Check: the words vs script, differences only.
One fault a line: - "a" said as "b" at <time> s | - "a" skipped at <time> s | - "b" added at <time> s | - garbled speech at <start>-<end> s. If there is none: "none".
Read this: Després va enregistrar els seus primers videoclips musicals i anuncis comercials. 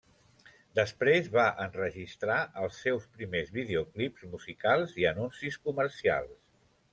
none